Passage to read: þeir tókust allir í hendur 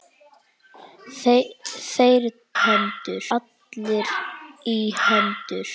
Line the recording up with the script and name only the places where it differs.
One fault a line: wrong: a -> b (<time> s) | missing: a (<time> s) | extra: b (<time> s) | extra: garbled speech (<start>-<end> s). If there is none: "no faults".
wrong: tókust -> hendur (2.6 s)